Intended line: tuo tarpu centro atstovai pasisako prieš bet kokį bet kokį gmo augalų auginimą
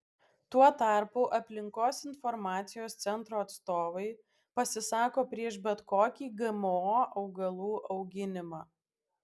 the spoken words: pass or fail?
fail